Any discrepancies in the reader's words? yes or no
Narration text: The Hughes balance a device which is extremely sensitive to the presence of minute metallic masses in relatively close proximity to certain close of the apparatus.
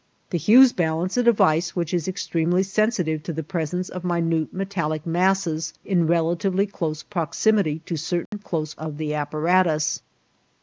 no